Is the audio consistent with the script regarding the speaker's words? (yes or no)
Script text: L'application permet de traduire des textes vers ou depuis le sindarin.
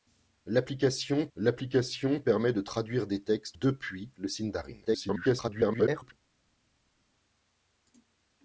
no